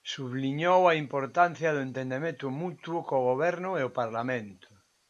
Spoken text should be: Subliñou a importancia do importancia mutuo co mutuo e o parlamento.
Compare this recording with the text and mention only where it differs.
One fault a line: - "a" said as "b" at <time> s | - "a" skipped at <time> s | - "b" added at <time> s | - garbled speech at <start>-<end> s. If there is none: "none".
- "importancia" said as "entendemento" at 1.9 s
- "mutuo" said as "goberno" at 3.3 s